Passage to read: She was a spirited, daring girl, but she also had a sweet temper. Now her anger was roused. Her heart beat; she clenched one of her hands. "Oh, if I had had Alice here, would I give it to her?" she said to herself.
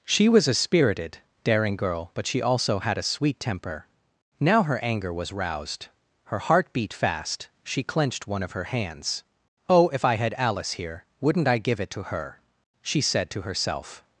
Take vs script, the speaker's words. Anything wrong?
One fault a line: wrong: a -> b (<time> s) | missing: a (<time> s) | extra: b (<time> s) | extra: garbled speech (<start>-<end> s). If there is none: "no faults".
extra: fast (6.9 s)
missing: had (10.3 s)
wrong: would -> wouldn't (11.2 s)